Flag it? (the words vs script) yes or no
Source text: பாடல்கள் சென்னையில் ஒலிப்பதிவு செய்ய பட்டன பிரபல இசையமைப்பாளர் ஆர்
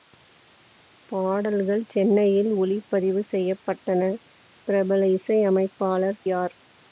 no